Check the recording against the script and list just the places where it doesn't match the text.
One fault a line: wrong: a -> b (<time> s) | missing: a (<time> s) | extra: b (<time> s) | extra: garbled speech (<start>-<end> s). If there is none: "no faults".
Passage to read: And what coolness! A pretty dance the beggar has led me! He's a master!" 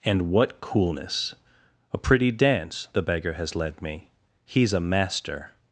no faults